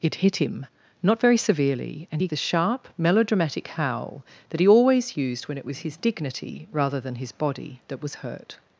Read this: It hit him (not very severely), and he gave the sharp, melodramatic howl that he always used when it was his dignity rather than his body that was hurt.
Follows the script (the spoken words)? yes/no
no